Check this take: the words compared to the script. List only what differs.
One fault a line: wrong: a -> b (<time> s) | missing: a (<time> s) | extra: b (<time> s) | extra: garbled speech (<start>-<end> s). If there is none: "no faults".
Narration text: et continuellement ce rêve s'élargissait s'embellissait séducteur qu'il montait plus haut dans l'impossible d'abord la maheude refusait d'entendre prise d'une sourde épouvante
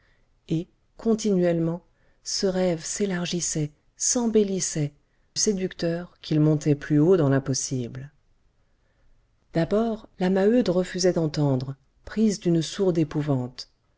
no faults